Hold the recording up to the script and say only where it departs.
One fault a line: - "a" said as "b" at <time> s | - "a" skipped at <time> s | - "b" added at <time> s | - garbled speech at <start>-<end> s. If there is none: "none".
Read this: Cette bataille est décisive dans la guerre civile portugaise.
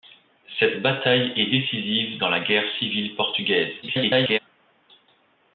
- garbled speech at 3.8-4.4 s